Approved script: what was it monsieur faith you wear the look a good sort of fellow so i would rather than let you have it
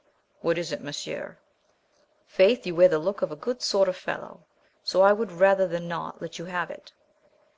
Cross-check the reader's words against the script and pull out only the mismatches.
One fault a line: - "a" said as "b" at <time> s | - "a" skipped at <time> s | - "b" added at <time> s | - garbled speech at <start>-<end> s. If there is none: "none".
- "was" said as "is" at 0.6 s
- "of" added at 3.2 s
- "not" added at 5.9 s